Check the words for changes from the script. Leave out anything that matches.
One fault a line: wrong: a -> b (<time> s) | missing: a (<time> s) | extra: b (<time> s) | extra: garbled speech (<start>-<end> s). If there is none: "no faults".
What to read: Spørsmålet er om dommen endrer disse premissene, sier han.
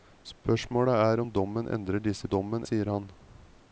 wrong: premissene -> dommen (2.3 s)